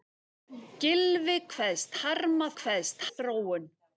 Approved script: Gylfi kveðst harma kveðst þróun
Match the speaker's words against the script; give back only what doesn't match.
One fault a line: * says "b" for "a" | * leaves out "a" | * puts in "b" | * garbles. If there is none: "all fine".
all fine